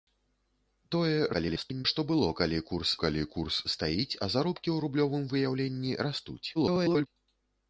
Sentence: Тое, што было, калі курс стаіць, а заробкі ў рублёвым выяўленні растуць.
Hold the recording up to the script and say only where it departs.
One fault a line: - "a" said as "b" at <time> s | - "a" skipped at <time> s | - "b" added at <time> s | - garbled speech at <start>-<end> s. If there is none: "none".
- garbled speech at 1.3-1.9 s
- "калі курс" added at 3.0 s
- garbled speech at 6.5-7.1 s